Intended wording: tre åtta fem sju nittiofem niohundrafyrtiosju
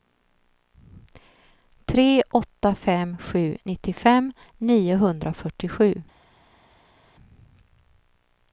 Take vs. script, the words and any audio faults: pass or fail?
pass